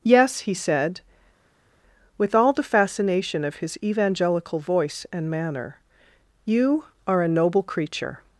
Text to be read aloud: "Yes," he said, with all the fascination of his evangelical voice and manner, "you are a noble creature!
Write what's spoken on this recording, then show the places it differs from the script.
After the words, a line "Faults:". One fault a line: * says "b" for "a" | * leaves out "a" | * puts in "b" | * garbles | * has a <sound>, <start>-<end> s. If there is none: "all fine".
"Yes," he said, with all the fascination of his evangelical voice and manner, "you are a noble creature!
Faults:
all fine